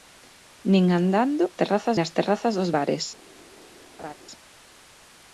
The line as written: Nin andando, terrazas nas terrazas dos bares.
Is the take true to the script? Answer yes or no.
yes